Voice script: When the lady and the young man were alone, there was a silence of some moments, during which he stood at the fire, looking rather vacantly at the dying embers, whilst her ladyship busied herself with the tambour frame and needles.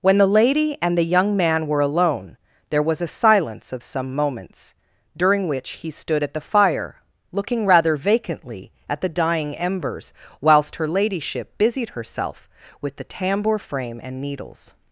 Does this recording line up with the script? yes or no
yes